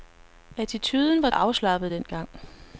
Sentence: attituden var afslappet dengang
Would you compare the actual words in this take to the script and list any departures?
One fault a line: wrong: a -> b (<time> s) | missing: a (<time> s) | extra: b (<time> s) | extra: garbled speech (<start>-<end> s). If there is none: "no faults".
no faults